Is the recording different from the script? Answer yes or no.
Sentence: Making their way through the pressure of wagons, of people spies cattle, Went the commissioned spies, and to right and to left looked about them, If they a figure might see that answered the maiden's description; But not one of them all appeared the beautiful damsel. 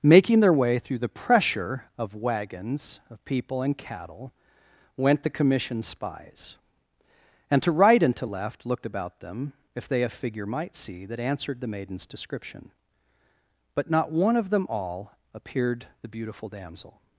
yes